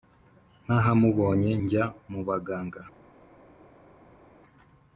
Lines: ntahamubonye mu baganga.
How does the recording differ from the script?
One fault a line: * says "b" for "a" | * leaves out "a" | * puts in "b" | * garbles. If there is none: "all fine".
* puts in "njya"